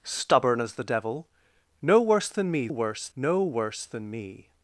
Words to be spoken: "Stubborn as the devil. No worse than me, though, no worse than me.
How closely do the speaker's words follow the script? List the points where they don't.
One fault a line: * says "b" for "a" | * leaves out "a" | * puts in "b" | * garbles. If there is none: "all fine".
* says "worse" for "though"